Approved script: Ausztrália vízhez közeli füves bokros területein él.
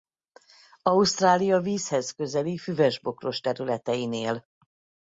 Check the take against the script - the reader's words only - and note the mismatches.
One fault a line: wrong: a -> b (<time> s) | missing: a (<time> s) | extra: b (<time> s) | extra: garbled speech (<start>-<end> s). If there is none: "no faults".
no faults